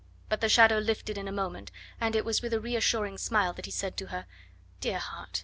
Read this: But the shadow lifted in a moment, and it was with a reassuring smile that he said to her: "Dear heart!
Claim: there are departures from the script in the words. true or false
false